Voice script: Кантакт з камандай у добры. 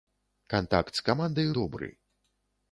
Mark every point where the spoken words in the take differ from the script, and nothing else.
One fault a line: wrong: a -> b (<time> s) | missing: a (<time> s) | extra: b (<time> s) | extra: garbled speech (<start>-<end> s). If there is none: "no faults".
no faults